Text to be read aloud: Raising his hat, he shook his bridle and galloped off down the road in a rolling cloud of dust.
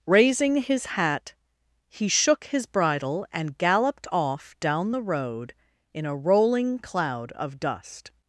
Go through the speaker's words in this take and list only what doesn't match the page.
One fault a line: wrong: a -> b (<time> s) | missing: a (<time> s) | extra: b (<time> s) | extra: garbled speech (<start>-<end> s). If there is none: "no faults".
no faults